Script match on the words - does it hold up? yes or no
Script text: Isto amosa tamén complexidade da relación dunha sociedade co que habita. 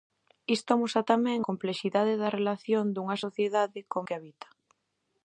yes